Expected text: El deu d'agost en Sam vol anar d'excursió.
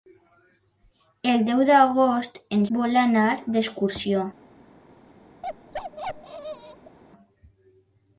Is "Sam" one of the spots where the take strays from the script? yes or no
yes